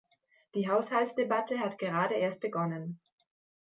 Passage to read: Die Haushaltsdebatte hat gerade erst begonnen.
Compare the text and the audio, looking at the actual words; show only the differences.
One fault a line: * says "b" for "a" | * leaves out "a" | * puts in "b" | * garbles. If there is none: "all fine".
all fine